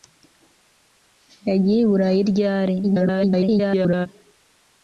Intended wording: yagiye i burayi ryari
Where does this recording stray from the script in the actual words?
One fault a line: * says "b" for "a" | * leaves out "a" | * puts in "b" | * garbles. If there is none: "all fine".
* garbles